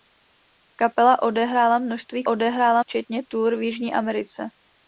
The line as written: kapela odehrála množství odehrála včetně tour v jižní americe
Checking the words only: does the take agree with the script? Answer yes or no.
yes